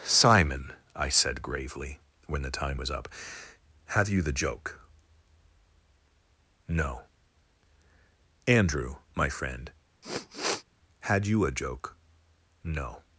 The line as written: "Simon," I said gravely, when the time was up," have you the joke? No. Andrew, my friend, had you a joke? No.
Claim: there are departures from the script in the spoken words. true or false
false